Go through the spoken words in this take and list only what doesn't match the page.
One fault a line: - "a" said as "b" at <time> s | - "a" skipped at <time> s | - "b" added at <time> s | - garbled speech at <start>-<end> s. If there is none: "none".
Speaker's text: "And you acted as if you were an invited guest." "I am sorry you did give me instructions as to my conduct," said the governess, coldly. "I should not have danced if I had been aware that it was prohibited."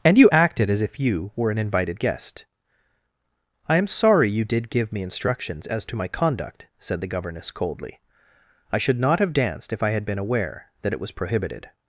none